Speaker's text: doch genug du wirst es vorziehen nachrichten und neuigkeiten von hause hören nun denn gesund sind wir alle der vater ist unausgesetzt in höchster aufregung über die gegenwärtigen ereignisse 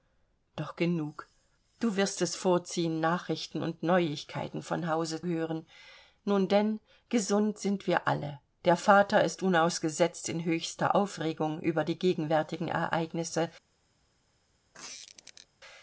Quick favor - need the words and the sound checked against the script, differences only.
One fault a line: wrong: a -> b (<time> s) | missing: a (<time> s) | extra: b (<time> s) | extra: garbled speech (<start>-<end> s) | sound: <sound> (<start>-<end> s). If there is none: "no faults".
sound: squeak (14.7-15.5 s)